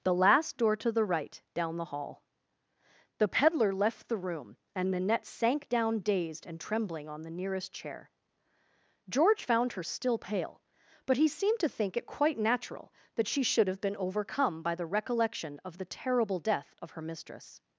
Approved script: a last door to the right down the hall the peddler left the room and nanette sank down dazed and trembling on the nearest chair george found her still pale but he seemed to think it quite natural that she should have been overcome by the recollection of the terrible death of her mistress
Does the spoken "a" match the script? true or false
false